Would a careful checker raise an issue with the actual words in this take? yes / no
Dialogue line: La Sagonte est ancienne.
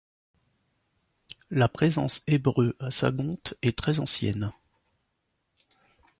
yes